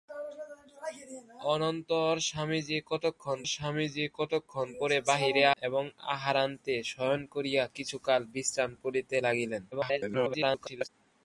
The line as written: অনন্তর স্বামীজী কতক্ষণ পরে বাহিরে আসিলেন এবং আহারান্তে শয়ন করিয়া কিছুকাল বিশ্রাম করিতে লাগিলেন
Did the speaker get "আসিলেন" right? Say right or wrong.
wrong